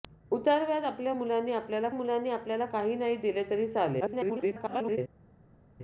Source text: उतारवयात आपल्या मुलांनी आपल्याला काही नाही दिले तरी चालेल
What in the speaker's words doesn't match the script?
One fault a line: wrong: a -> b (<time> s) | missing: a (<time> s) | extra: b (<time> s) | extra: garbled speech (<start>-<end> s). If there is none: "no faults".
extra: मुलांनी आपल्याला (1.9 s)
extra: garbled speech (4.0-5.0 s)